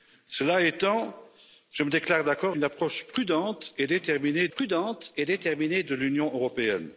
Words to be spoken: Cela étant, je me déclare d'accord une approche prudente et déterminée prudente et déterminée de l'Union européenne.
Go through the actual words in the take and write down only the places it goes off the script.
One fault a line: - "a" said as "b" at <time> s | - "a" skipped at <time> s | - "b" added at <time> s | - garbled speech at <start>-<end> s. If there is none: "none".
none